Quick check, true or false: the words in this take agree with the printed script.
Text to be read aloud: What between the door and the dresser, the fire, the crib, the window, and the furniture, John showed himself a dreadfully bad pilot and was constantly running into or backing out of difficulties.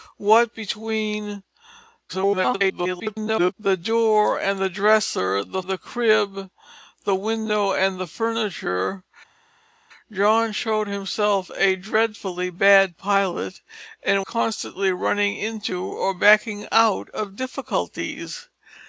false